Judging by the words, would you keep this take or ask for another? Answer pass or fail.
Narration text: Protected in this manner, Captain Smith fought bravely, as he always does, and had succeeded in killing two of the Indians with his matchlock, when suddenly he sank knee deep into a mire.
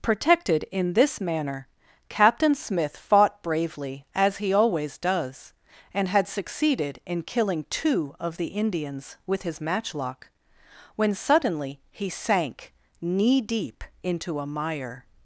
pass